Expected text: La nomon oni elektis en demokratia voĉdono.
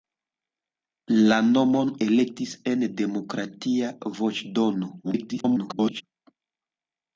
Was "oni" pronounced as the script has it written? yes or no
no